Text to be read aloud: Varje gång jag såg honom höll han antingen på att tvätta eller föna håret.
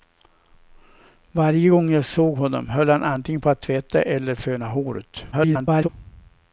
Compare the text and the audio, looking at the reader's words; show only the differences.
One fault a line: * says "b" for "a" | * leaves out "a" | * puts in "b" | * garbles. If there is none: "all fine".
* garbles